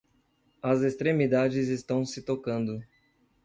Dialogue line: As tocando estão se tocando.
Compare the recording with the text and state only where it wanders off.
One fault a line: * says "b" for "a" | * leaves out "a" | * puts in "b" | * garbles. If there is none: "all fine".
* says "extremidades" for "tocando"